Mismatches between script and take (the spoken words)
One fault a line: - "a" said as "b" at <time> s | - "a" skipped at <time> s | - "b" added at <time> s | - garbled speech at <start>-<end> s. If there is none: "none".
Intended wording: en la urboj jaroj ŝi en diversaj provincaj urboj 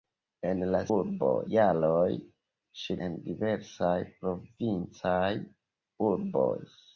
none